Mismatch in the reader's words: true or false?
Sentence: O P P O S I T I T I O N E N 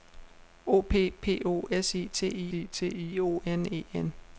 false